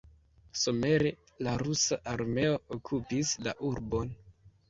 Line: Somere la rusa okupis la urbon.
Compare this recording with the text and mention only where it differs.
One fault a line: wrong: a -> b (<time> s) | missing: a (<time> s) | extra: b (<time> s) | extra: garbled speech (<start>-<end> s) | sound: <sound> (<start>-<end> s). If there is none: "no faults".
extra: armeo (2.1 s)